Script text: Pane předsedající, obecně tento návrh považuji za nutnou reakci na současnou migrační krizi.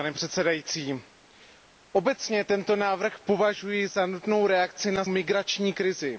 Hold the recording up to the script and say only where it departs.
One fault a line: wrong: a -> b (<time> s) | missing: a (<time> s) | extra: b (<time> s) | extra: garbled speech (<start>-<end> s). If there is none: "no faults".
missing: současnou (5.0 s)